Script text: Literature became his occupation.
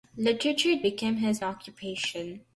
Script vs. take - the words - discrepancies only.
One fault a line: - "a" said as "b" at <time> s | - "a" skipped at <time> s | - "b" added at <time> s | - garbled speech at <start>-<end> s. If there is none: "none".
none